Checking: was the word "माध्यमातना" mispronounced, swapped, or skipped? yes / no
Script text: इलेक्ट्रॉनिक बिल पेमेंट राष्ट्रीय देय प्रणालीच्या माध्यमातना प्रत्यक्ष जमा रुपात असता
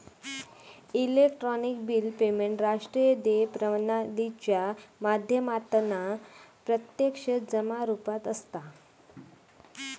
no